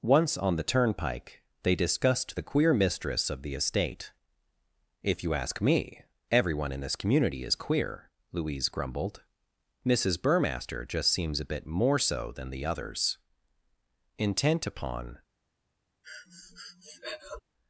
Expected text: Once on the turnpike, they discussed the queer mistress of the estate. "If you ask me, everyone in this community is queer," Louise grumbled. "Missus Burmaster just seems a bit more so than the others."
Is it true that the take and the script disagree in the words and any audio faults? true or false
true